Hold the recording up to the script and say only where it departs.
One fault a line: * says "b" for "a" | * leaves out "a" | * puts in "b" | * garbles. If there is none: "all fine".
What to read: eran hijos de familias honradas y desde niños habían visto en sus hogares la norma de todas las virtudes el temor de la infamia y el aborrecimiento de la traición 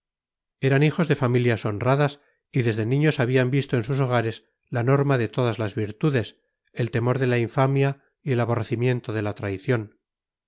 all fine